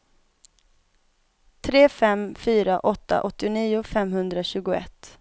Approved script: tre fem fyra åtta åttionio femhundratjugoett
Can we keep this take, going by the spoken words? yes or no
yes